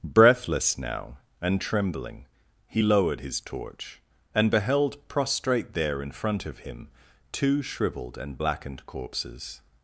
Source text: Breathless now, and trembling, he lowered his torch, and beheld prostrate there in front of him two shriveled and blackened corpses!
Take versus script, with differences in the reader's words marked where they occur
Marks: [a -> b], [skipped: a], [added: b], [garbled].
Breathless now, and trembling, he lowered his torch, and beheld prostrate there in front of him two shriveled and blackened corpses!